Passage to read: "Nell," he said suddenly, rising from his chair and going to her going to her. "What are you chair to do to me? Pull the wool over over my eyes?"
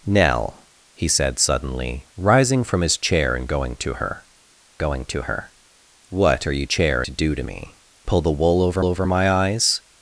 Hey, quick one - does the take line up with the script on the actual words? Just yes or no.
yes